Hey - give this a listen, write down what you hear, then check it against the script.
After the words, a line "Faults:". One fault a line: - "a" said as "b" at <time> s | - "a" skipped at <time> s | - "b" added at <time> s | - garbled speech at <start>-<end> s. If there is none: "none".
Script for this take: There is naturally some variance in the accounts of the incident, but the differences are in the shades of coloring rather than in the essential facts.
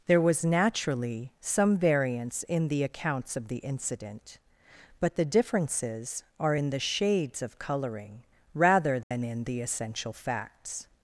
There was naturally some variance in the accounts of the incident, but the differences are in the shades of coloring rather than in the essential facts.
Faults:
- "is" said as "was" at 0.2 s